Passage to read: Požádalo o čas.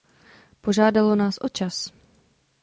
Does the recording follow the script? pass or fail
fail